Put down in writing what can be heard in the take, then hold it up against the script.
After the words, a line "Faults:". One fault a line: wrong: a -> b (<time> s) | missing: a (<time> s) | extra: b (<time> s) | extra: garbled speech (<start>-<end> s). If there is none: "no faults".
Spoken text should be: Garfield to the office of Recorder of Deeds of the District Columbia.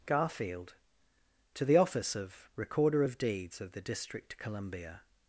Garfield to the office of Recorder of Deeds of the District Columbia.
Faults:
no faults